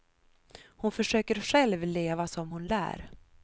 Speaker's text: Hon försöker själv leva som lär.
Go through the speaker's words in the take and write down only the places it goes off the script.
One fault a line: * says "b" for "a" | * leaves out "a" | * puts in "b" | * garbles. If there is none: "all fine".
* puts in "hon"